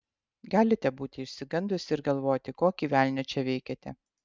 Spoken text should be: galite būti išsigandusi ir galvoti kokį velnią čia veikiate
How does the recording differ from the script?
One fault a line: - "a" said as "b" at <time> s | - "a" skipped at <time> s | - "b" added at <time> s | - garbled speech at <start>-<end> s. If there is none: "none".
none